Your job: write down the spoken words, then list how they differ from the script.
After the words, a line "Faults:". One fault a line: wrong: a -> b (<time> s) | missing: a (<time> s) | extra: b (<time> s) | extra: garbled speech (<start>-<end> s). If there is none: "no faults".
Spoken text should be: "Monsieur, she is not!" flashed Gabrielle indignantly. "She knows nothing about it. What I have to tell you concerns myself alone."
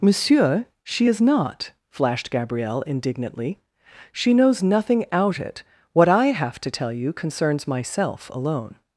"Monsieur, she is not!" flashed Gabrielle indignantly. "She knows nothing out it. What I have to tell you concerns myself alone."
Faults:
wrong: about -> out (5.1 s)